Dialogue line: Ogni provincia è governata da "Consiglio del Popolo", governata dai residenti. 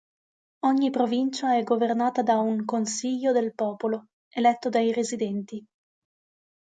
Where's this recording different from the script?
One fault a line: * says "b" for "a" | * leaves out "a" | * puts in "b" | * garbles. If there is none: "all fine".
* puts in "un"
* says "eletto" for "governata"